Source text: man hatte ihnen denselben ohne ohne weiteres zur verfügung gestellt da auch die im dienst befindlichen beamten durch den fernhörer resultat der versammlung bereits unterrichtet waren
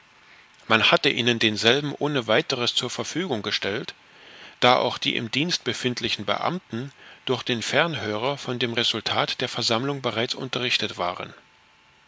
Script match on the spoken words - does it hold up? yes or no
no